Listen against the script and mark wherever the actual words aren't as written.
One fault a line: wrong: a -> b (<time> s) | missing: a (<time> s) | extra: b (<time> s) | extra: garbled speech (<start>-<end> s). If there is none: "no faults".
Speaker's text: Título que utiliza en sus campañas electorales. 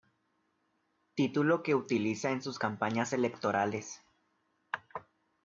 no faults